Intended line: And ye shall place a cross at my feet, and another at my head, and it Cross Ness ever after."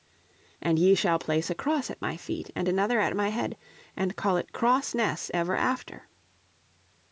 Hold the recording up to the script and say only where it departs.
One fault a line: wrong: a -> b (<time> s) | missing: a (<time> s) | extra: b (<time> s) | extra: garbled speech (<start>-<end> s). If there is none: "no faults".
extra: call (4.2 s)